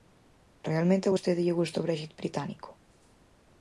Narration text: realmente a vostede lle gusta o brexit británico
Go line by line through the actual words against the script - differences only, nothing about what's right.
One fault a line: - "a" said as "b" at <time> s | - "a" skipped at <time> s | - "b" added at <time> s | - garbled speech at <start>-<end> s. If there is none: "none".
none